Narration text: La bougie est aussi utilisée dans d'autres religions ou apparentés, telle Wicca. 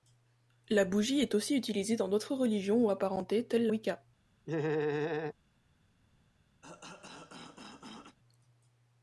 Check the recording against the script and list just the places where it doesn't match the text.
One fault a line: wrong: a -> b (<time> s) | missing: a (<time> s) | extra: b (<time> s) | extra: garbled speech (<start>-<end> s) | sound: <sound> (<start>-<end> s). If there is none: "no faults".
sound: laugh (4.5-5.3 s)
sound: cough (6.6-8.2 s)